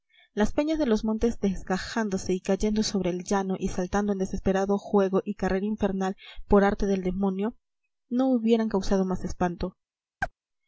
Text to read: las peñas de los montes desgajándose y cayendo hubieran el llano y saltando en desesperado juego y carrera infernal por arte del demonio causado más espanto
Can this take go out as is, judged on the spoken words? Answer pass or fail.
fail